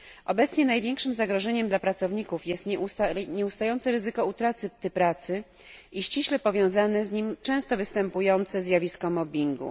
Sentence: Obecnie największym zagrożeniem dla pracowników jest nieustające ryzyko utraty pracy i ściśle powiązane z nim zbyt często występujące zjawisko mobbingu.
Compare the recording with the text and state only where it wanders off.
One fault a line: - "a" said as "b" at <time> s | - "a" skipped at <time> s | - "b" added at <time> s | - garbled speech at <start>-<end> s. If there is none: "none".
- "zbyt" skipped at 7.4 s